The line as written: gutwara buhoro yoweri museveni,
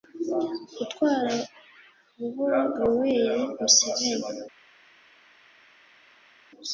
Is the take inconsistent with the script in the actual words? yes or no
no